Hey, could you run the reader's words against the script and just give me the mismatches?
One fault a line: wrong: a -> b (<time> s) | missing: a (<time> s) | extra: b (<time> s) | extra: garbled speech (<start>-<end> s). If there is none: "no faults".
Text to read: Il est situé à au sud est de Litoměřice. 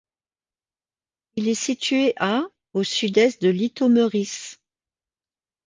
no faults